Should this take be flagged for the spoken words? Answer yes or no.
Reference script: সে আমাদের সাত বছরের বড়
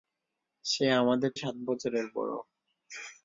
no